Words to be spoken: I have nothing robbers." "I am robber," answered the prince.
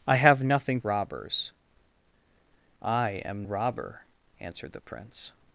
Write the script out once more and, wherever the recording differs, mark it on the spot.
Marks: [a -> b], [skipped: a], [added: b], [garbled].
I have nothing robbers." "I am robber," answered the prince.